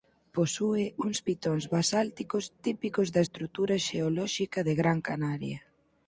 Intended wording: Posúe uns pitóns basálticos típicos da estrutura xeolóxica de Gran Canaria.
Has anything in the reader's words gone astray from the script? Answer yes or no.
no